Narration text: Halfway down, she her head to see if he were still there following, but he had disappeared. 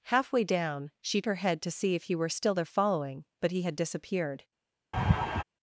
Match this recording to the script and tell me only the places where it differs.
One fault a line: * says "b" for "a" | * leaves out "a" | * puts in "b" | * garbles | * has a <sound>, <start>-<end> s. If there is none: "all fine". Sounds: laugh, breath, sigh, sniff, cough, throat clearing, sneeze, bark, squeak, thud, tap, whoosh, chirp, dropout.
* has a laugh, 4.9-5.4 s